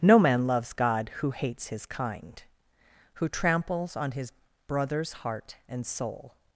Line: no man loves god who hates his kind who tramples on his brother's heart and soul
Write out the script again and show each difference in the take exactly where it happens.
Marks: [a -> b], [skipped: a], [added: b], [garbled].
no man loves god who hates his kind who tramples on his brother's heart and soul